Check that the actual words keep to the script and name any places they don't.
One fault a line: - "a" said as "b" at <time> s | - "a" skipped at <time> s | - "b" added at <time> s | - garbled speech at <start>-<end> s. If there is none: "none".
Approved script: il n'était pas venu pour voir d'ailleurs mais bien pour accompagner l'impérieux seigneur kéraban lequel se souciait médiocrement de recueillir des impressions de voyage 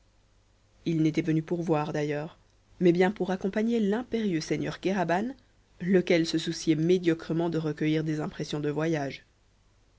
- "pas" skipped at 1.2 s